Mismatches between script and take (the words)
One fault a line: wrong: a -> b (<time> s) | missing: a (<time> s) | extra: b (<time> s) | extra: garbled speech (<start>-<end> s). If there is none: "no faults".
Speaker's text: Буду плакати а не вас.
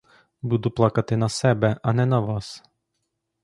extra: на себе (1.2 s)
extra: на (2.0 s)